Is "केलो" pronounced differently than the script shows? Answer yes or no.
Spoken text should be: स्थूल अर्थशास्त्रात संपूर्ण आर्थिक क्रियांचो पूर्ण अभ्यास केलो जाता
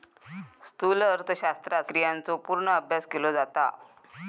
no